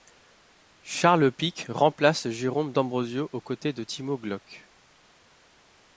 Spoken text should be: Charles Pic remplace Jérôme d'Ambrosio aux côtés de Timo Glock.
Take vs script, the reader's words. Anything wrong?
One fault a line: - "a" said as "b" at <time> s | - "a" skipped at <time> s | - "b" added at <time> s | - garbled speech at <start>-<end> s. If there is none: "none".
none